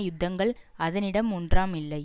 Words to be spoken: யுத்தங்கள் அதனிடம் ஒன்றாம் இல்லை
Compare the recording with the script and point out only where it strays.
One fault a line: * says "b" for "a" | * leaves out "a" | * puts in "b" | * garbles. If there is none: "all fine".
all fine